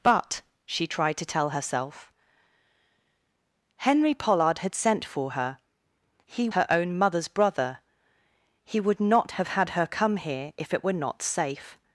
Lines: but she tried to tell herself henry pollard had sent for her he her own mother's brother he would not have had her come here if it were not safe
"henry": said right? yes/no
yes